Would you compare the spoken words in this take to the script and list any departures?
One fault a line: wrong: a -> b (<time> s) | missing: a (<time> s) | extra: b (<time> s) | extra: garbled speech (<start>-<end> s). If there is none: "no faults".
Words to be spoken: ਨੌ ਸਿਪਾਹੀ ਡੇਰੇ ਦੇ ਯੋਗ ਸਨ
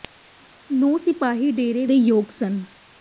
no faults